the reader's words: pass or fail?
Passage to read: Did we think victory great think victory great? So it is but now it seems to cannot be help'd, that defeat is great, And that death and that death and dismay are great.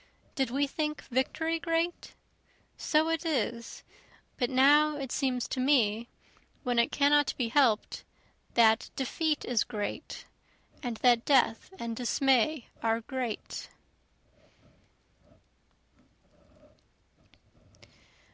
fail